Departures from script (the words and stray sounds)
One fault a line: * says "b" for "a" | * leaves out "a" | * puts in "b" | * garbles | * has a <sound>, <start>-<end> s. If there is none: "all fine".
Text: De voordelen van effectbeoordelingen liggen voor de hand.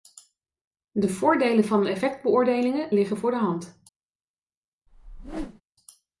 * has a whoosh, 4.9-5.6 s